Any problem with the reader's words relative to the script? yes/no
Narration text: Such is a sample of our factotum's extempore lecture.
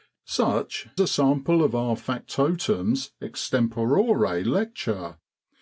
yes